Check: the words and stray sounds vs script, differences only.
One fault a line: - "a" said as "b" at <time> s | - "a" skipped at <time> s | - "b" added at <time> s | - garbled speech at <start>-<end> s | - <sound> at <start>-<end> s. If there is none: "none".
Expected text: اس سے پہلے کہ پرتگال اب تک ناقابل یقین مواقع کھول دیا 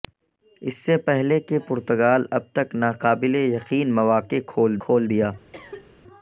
- "کھول" added at 4.8 s
- cough at 5.5-5.9 s